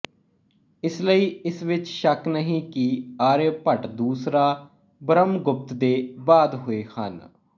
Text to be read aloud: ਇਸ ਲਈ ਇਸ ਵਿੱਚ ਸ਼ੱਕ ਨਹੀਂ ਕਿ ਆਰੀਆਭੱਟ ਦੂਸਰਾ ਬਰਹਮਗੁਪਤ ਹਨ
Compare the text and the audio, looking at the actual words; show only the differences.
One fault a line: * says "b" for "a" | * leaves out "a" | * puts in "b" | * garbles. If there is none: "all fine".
* puts in "ਦੇ ਬਾਅਦ ਹੋਏ"